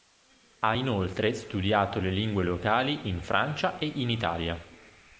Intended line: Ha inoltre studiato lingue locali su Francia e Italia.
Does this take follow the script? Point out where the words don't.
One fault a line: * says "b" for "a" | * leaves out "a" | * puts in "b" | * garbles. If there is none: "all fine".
* puts in "le"
* says "in" for "su"
* puts in "in"